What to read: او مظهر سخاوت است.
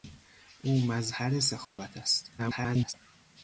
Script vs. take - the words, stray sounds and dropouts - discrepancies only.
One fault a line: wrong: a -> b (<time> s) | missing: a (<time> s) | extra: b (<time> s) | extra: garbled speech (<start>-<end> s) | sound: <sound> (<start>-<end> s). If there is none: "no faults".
sound: dropout (1.6-1.8 s)
extra: garbled speech (2.4-2.9 s)